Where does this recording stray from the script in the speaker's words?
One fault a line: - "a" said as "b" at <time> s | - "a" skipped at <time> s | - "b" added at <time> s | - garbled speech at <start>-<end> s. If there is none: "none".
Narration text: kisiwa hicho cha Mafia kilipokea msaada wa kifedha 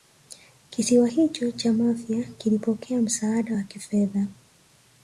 none